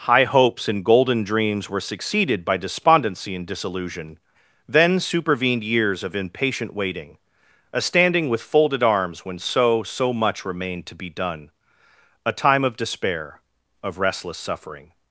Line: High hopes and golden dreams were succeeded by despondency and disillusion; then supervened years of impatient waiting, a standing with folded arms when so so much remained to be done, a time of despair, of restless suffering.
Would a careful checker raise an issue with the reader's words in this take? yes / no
no